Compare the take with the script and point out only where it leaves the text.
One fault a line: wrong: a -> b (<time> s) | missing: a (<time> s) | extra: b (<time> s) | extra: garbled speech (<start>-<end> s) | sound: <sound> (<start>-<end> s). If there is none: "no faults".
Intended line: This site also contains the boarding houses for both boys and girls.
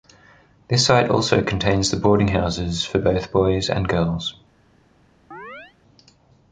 sound: chirp (5.3-5.8 s)